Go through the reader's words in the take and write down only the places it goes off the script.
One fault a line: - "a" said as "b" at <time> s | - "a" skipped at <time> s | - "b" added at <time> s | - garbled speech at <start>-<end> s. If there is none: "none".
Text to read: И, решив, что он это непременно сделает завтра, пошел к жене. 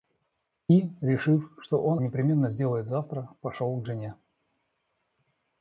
- "это" skipped at 2.0 s